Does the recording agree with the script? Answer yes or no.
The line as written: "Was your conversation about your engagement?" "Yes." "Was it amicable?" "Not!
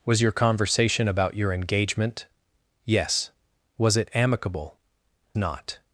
yes